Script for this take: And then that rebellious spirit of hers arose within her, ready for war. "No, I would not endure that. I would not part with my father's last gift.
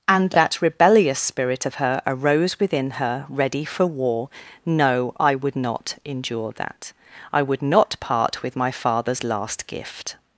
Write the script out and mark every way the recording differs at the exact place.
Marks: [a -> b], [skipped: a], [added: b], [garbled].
And [skipped: then] that rebellious spirit of [hers -> her] arose within her, ready for war. "No, I would not endure that. I would not part with my father's last gift.